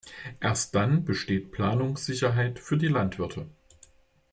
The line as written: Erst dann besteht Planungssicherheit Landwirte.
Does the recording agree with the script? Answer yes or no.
no